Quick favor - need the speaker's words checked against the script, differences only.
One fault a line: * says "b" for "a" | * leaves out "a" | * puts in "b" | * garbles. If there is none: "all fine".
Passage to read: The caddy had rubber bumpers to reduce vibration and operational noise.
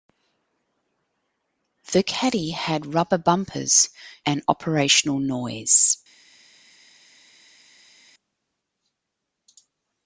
* leaves out "to reduce vibration"